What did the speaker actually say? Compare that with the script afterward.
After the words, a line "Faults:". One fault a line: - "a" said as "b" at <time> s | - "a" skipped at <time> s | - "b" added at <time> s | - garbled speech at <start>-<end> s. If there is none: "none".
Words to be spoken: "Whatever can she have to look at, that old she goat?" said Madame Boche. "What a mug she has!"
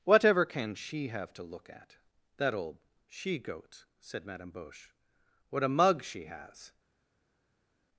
"Whatever can she have to look at, that old she goat?" said Madame Boche. "What a mug she has!"
Faults:
none